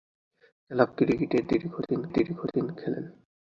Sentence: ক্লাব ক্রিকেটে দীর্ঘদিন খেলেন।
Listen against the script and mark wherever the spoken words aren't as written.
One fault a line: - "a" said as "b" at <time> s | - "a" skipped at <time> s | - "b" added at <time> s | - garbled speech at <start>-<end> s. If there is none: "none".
- "দীর্ঘদিন" added at 2.1 s